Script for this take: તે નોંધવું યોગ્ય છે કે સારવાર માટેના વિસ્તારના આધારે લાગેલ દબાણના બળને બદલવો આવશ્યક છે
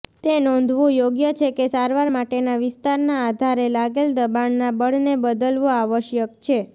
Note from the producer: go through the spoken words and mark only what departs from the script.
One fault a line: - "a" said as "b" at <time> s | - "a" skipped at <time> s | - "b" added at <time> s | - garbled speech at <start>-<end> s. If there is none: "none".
none